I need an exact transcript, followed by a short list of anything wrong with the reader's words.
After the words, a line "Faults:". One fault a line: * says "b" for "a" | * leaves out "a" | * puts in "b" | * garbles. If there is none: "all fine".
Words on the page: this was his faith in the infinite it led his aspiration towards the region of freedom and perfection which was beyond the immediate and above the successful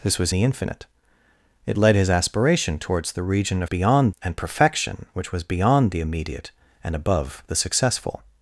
this was the infinite it led his aspiration towards the region of beyond and perfection which was beyond the immediate and above the successful
Faults:
* leaves out "his faith in"
* says "beyond" for "freedom"